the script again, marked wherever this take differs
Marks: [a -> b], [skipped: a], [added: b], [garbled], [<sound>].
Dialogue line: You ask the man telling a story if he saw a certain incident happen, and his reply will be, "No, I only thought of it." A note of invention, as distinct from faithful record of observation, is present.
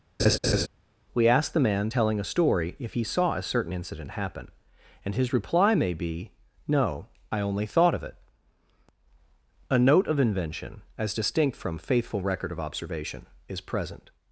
[laugh] [You -> We] ask the man telling a story if he saw a certain incident happen, and his reply [will -> may] be, "No, I only thought of it." A note of invention, as distinct from faithful record of observation, is present.